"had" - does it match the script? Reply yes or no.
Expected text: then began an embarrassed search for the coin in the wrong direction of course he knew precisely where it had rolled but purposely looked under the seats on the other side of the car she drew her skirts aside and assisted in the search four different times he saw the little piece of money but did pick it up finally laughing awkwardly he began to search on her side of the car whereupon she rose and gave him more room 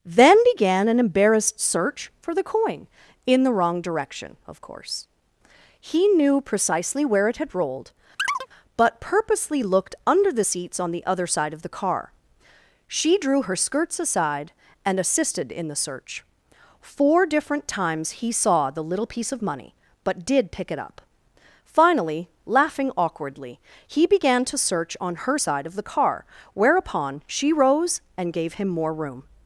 yes